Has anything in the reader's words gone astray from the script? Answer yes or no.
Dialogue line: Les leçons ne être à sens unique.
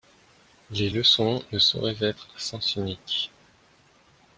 yes